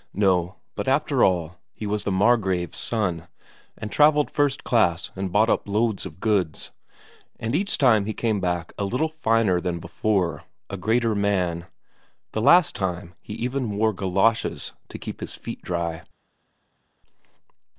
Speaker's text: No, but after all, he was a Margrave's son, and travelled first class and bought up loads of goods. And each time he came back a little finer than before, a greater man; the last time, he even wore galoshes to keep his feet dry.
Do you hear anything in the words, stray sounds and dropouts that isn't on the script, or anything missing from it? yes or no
yes